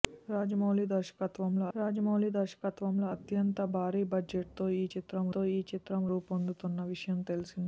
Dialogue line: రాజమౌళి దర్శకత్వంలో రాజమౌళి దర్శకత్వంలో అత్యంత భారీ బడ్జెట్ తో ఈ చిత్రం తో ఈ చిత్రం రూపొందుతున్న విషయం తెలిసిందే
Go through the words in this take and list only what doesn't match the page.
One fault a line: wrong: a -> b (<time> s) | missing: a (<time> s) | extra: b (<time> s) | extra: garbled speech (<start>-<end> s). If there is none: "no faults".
no faults